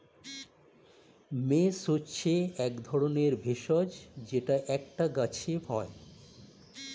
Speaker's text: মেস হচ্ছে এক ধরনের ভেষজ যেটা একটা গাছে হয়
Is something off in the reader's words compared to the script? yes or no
no